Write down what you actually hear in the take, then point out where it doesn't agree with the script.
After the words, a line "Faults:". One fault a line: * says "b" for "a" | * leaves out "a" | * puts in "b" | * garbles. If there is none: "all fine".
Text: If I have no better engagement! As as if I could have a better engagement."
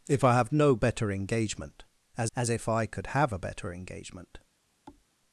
If I have no better engagement! As as if I could have a better engagement."
Faults:
all fine